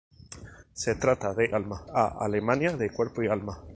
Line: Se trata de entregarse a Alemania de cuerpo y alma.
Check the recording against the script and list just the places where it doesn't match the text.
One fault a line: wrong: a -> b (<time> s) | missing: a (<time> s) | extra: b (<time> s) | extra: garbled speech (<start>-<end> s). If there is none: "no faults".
wrong: entregarse -> alma (1.5 s)